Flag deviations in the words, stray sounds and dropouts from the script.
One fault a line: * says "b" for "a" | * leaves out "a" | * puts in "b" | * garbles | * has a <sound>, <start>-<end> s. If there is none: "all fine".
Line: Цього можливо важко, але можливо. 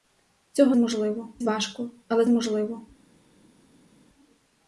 all fine